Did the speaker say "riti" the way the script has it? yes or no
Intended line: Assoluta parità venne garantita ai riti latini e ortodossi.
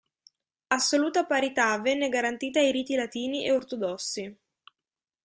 yes